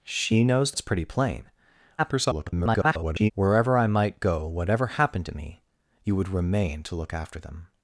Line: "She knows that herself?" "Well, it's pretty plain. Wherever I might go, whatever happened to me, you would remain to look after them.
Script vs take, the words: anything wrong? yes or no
yes